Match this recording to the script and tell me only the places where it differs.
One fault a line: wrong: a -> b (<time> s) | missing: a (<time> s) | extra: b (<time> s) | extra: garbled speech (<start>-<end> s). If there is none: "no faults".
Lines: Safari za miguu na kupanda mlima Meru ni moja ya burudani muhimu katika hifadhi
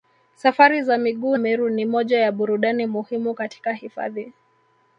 missing: na kupanda mlima (1.4 s)